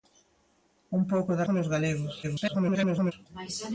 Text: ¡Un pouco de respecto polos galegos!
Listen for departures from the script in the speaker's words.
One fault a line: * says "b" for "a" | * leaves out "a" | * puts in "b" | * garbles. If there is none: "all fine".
* leaves out "respecto"
* garbles